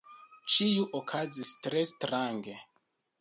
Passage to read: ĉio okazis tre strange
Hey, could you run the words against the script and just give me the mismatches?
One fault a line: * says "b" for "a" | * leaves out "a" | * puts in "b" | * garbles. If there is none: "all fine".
all fine